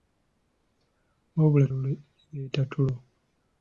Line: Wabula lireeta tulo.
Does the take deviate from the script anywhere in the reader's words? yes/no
no